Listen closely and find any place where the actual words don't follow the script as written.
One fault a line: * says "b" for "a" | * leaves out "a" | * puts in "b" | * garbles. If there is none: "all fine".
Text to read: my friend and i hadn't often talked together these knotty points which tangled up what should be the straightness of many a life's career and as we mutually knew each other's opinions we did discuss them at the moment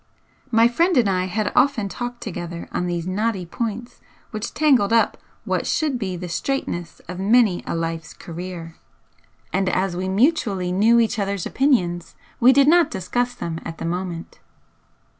* says "had" for "hadn't"
* puts in "on"
* puts in "not"